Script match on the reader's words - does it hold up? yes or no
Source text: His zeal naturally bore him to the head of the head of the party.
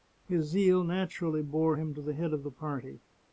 no